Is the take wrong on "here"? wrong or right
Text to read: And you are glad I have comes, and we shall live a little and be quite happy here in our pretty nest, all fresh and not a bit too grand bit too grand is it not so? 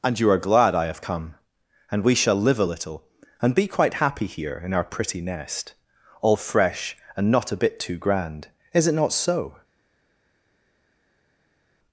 right